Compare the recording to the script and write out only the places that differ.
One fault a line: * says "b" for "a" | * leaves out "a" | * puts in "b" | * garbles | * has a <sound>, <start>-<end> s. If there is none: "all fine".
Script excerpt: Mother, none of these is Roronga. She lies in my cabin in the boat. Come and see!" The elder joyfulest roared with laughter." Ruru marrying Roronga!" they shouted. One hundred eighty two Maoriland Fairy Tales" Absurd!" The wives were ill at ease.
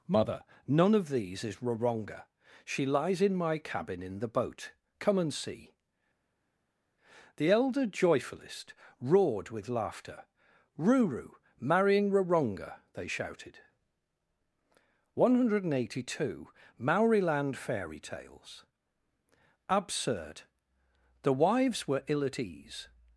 all fine